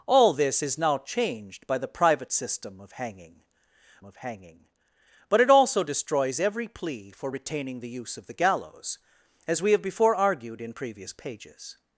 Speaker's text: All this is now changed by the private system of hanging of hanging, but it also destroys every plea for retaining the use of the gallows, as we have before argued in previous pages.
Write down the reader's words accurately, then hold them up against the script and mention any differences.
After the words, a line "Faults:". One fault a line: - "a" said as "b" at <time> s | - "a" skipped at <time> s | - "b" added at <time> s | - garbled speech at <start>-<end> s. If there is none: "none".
All this is now changed by the private system of hanging of hanging, but it also destroys every plea for retaining the use of the gallows, as we have before argued in previous pages.
Faults:
none